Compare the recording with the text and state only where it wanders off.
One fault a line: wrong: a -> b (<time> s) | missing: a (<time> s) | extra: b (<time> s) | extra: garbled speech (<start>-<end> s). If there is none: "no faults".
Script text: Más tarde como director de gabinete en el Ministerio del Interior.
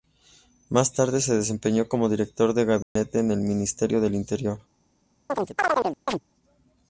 extra: se desempeñó (1.2 s)